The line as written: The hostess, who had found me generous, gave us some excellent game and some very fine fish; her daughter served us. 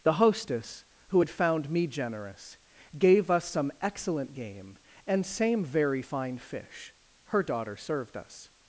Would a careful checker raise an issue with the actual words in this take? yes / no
yes